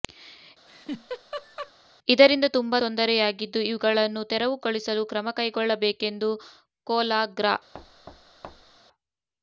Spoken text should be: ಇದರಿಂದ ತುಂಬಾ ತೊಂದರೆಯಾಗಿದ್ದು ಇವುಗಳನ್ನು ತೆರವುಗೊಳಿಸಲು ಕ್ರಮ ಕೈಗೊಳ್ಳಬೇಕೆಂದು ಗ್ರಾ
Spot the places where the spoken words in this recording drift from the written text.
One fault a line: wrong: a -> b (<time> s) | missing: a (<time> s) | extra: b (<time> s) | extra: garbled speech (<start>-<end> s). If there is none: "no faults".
extra: ಕೊಲ (6.9 s)